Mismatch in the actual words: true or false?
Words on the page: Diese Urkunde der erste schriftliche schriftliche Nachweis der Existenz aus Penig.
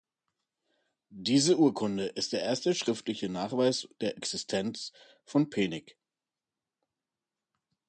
true